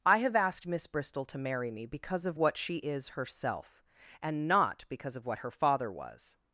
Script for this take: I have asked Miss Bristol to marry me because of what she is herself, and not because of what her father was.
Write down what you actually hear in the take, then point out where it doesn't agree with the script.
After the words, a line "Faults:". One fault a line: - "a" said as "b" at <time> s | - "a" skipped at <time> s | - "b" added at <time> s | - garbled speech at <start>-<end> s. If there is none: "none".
I have asked Miss Bristol to marry me because of what she is herself, and not because of what her father was.
Faults:
none